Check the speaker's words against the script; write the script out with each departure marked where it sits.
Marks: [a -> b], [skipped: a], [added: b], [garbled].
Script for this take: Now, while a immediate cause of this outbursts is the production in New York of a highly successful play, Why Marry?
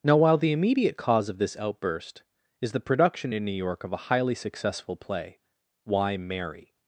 Now, while [a -> the] immediate cause of this [outbursts -> outburst] is the production in New York of a highly successful play, Why Marry?